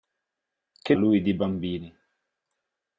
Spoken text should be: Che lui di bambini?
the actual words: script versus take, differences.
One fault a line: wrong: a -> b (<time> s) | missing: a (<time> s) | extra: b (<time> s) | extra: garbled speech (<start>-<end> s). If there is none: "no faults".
no faults